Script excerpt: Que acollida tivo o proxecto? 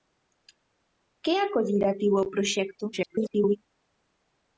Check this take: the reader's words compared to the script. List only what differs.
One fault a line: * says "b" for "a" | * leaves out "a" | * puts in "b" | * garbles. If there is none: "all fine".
* garbles